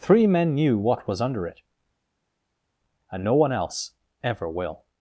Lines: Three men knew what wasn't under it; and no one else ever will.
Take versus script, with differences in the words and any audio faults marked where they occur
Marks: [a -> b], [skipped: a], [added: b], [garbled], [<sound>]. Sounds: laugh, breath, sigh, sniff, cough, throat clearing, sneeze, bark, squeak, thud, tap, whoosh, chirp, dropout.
Three men knew what [wasn't -> was] under it; and no one else ever will.